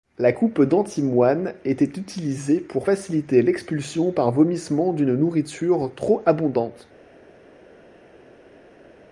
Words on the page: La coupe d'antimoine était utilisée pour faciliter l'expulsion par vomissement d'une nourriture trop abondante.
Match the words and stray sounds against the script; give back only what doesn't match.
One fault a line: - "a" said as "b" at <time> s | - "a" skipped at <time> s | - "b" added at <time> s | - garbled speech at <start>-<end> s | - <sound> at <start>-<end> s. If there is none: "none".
none